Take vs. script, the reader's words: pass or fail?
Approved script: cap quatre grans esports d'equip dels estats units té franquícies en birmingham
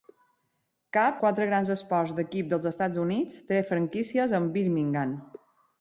pass